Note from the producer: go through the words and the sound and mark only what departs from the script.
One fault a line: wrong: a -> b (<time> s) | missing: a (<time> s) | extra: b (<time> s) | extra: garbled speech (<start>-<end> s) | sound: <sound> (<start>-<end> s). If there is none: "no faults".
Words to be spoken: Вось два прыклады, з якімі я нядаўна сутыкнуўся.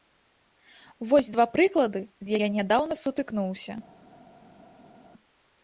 missing: якімі (2.3 s)